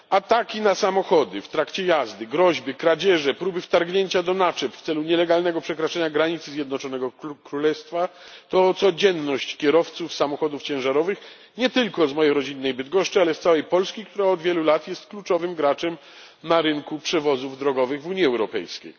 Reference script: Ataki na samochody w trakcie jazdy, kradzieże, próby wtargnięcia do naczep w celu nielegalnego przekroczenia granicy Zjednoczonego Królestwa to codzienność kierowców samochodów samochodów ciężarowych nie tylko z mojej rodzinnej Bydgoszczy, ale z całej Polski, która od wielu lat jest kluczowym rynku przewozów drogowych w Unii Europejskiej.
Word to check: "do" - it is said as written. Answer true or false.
true